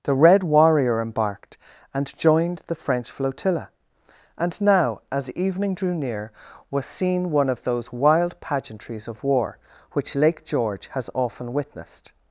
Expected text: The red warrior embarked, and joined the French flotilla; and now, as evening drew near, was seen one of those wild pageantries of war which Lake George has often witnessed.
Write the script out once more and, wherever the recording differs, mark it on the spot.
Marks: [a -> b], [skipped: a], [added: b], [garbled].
The red warrior embarked, and joined the French flotilla; and now, as evening drew near, was seen one of those wild pageantries of war which Lake George has often witnessed.